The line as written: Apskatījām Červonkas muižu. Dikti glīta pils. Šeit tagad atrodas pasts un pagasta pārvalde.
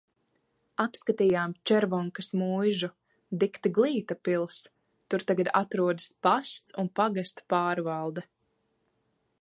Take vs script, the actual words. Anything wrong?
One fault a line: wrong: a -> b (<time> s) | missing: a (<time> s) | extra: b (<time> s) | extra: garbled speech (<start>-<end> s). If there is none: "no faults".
wrong: Šeit -> Tur (5.1 s)